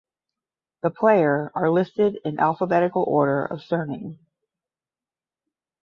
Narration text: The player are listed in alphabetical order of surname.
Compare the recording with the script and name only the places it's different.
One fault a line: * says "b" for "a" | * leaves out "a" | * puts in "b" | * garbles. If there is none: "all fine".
all fine